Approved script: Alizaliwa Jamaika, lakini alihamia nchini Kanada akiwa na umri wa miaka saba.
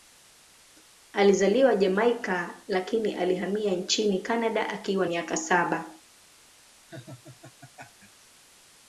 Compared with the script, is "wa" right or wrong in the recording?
wrong